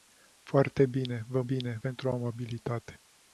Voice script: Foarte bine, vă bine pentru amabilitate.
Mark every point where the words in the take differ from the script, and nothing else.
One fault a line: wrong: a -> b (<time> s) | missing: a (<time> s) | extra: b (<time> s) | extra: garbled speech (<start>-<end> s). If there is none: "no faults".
no faults